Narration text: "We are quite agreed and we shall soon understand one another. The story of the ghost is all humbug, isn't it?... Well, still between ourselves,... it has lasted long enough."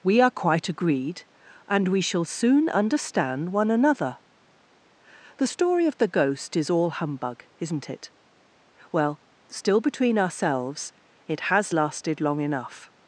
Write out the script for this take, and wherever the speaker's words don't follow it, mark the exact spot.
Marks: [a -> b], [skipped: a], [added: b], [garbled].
"We are quite agreed and we shall soon understand one another. The story of the ghost is all humbug, isn't it?... Well, still between ourselves,... it has lasted long enough."